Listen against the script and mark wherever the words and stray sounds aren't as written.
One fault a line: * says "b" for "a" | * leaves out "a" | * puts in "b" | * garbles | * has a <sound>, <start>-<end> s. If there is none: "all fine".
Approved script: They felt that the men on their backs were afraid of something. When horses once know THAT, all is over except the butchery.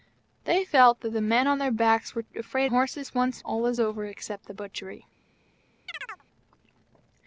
* leaves out "of something When"
* leaves out "know THAT"
* has a chirp, 5.9-6.2 s